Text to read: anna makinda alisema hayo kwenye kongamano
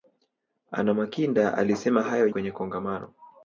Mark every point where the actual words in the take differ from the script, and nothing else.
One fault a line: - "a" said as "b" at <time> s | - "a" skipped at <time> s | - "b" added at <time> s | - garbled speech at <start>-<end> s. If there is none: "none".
none